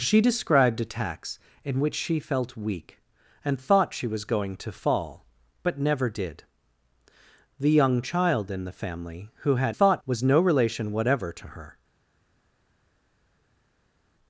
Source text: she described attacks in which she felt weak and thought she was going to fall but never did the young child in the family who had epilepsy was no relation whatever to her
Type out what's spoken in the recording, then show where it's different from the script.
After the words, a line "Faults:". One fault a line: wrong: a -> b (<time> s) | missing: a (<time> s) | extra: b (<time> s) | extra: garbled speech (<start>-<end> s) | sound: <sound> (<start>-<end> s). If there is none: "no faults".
she described attacks in which she felt weak and thought she was going to fall but never did the young child in the family who had thought was no relation whatever to her
Faults:
wrong: epilepsy -> thought (9.7 s)